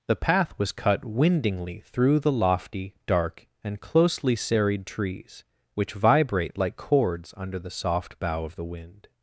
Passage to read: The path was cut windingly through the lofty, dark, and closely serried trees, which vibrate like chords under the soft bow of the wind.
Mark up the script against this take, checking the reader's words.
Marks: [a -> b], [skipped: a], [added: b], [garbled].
The path was cut windingly through the lofty, dark, and closely serried trees, which vibrate like chords under the soft bow of the wind.